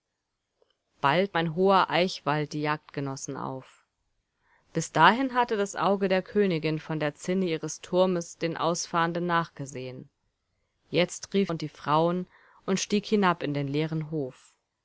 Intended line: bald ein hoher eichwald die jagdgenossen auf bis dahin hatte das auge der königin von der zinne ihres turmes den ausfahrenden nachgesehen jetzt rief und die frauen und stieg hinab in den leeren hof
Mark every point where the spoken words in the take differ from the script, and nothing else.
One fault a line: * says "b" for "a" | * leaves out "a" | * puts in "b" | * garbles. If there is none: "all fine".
all fine